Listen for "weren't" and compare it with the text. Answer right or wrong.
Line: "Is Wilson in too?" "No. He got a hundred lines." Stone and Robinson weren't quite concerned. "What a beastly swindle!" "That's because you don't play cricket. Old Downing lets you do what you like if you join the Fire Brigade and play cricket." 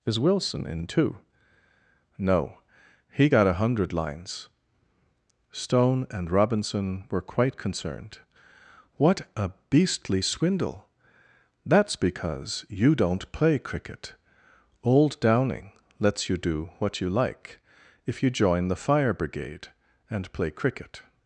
wrong